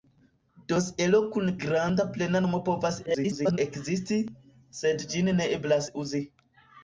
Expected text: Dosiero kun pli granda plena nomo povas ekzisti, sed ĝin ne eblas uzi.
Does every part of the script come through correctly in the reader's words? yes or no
no